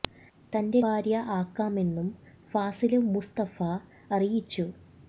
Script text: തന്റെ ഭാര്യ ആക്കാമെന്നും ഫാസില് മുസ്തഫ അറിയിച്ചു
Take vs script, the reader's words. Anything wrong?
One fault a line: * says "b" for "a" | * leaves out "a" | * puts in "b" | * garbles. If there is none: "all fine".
all fine